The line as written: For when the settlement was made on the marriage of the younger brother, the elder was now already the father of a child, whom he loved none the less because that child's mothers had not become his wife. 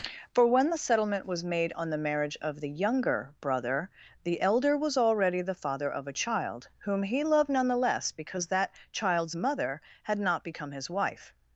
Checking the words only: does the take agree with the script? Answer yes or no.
no